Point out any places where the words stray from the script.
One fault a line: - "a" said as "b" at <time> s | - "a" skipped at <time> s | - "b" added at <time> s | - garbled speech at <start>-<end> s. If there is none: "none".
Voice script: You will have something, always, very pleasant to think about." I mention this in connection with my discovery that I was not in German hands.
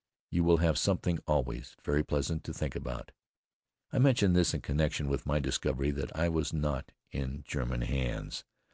none